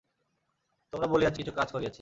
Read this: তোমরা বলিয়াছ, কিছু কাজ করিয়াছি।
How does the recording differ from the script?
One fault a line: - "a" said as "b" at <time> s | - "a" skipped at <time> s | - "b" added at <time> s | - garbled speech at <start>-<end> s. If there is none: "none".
none